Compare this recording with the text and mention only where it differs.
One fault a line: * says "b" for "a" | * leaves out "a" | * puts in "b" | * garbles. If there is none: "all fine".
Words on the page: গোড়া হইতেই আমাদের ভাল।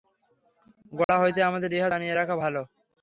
* puts in "ইহা জানিয়া রাখা"